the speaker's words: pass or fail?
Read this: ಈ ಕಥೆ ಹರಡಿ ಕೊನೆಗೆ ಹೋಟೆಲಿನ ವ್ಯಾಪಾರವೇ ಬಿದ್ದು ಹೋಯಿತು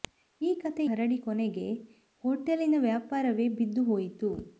pass